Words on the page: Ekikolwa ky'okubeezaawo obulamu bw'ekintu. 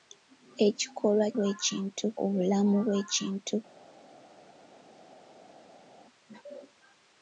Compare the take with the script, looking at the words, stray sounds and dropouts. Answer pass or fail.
fail